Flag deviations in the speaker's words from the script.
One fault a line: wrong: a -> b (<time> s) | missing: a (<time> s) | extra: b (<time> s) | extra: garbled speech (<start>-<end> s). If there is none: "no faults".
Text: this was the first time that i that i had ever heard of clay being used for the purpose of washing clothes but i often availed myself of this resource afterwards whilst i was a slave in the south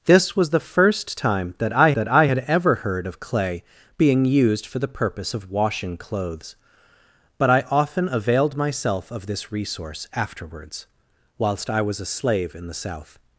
no faults